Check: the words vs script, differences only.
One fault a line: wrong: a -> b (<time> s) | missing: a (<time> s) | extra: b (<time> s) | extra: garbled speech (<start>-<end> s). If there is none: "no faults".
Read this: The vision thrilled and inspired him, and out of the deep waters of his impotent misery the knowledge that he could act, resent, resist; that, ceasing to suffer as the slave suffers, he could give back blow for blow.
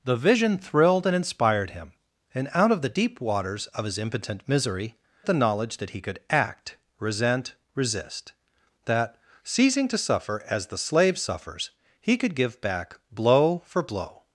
no faults